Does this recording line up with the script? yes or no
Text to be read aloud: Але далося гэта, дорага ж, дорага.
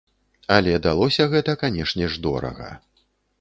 no